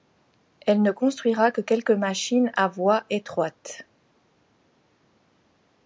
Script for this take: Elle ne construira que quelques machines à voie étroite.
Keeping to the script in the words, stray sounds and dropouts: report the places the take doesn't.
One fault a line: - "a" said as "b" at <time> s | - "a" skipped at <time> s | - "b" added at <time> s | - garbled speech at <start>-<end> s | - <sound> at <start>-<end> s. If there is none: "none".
none